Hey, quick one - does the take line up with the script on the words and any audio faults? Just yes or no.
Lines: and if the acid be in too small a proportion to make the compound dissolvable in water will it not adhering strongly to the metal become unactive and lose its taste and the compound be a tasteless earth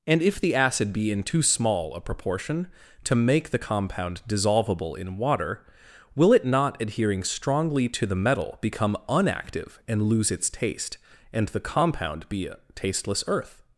yes